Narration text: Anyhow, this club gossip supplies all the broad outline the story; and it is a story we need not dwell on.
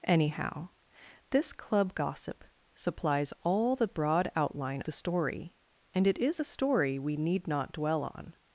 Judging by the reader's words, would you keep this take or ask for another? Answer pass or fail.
pass